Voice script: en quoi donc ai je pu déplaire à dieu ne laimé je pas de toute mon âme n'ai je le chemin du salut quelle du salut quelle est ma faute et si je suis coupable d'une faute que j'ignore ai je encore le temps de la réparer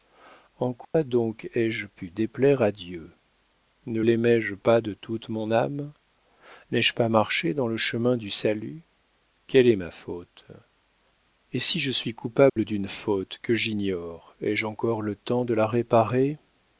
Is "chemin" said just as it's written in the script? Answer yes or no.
no